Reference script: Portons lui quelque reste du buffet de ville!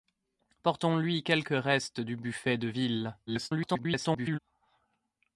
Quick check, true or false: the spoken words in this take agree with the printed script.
false